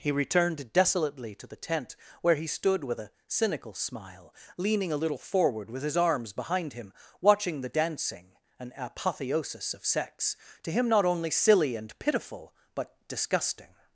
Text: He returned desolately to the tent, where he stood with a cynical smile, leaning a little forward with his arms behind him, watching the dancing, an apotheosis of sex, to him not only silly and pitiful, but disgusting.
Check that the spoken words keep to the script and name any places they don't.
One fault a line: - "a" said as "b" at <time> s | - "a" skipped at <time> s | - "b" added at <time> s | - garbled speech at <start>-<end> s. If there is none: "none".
none